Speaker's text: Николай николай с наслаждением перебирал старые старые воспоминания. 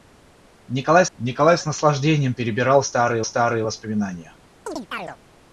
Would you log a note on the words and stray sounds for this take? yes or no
yes